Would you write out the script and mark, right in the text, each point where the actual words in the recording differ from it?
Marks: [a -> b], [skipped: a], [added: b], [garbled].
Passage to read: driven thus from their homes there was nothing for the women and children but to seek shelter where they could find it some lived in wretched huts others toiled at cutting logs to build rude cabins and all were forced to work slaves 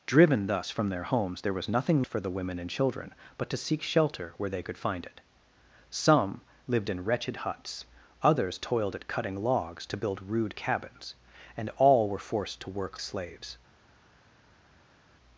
driven thus from their homes there was nothing for the women and children but to seek shelter where they could find it some lived in wretched huts others toiled at cutting logs to build rude cabins and all were forced to work slaves